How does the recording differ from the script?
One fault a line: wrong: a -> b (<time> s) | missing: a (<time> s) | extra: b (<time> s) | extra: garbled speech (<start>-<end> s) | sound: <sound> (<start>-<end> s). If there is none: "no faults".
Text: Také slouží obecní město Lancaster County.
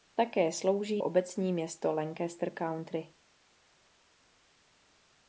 no faults